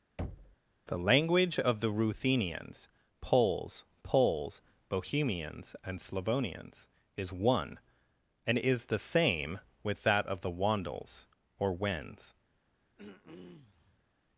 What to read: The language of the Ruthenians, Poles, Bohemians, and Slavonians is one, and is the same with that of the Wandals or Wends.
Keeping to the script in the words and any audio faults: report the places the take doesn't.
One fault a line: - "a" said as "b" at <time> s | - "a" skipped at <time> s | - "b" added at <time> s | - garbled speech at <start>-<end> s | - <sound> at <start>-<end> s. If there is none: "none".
- thud at 0.2-0.6 s
- "Poles" added at 4.0 s
- throat clearing at 13.0-14.1 s